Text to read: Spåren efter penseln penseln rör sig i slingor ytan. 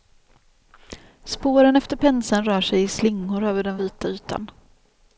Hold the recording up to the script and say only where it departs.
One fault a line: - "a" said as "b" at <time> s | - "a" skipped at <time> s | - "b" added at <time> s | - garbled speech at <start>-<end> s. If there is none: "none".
- "penseln" skipped at 2.5 s
- "över den vita" added at 3.4 s